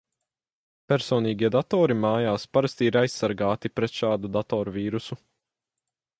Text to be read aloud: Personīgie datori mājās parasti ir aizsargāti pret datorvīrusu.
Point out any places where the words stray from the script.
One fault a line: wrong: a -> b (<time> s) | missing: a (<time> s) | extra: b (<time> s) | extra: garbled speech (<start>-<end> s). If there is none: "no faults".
extra: šādu (4.0 s)